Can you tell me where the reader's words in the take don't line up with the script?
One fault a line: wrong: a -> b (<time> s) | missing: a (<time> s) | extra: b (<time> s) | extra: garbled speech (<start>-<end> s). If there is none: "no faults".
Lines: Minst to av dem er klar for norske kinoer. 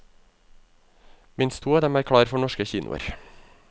no faults